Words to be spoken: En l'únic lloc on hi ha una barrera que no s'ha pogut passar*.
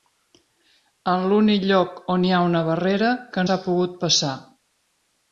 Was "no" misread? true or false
true